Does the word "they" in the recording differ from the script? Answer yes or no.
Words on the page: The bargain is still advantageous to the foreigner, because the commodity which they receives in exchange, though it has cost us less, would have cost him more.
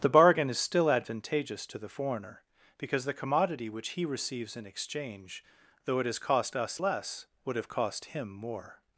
yes